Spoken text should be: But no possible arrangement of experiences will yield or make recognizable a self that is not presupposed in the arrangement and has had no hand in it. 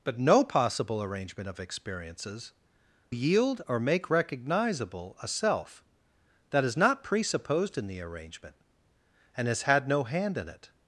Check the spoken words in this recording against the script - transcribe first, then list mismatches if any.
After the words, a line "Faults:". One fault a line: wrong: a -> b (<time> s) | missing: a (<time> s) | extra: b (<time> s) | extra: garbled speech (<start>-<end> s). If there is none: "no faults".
But no possible arrangement of experiences yield or make recognizable a self that is not presupposed in the arrangement and has had no hand in it.
Faults:
missing: will (2.5 s)